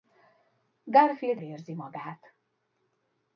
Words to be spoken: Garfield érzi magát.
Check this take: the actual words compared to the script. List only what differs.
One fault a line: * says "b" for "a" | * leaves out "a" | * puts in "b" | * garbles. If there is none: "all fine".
all fine